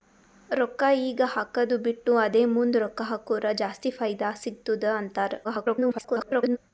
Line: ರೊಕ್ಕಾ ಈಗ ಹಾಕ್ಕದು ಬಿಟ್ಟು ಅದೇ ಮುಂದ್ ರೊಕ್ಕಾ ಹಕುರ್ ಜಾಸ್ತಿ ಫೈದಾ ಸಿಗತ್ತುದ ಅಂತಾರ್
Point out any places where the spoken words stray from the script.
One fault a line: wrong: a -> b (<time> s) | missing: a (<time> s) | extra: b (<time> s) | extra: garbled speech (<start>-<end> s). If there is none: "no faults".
extra: garbled speech (5.4-6.6 s)